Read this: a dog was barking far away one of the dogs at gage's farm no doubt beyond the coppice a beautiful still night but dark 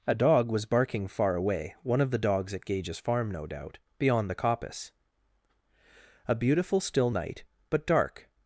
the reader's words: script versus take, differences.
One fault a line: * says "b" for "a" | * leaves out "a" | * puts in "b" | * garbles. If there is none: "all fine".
all fine